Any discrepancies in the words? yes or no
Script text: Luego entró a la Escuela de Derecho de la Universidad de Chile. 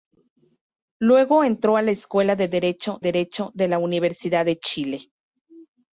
yes